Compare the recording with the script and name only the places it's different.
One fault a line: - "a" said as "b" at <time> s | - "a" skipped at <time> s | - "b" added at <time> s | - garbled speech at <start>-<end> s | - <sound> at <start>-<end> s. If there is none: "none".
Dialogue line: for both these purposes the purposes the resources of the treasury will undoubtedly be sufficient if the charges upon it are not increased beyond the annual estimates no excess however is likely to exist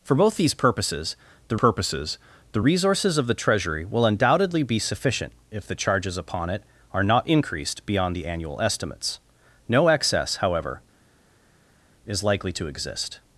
none